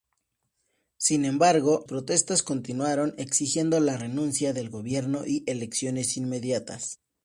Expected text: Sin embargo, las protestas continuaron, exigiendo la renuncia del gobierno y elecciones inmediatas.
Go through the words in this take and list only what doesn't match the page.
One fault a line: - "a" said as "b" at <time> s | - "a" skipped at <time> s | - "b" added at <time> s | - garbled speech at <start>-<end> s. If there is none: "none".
- "las" skipped at 1.9 s